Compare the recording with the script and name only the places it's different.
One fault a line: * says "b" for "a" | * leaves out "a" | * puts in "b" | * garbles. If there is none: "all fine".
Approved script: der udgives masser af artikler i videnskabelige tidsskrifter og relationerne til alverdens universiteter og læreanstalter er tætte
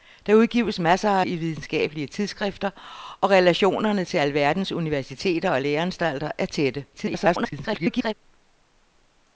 * leaves out "artikler"
* garbles